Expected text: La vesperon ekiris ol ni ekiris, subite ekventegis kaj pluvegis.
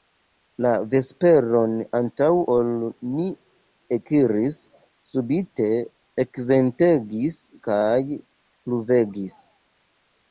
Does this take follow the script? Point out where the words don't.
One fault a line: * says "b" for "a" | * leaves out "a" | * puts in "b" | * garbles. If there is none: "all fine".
* says "antaŭ" for "ekiris"